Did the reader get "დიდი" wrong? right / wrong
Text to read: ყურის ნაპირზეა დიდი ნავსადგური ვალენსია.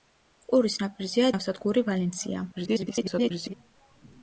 wrong